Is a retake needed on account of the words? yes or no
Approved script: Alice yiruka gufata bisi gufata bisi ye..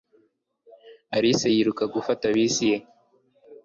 yes